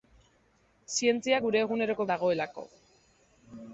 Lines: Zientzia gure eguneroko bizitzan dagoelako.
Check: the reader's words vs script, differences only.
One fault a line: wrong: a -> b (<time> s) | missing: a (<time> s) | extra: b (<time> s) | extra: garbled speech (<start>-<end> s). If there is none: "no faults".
missing: bizitzan (2.1 s)